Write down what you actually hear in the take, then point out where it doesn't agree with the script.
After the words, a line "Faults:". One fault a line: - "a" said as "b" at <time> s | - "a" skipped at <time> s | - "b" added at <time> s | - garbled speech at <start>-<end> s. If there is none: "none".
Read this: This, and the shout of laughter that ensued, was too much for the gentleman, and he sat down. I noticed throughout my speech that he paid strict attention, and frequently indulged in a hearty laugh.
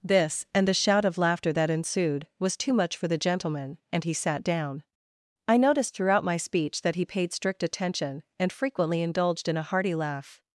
This, and the shout of laughter that ensued, was too much for the gentleman, and he sat down. I noticed throughout my speech that he paid strict attention, and frequently indulged in a hearty laugh.
Faults:
none